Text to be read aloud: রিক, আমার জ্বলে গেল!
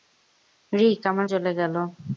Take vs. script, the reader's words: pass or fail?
pass